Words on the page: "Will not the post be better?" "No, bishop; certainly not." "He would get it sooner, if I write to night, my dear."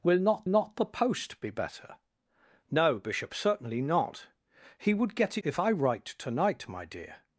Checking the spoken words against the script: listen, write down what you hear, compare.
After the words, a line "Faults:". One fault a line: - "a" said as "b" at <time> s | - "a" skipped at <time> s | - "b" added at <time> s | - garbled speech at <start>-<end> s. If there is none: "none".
"Will not not the post be better?" "No, bishop; certainly not." "He would get if I write to night, my dear."
Faults:
- "not" added at 0.5 s
- "it sooner" skipped at 5.4 s